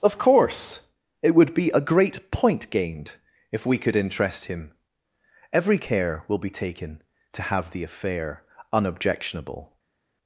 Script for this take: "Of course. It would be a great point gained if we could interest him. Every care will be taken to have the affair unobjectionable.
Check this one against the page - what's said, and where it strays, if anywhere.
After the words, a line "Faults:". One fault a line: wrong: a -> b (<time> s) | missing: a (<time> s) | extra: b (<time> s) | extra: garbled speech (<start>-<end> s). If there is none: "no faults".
"Of course. It would be a great point gained if we could interest him. Every care will be taken to have the affair unobjectionable.
Faults:
no faults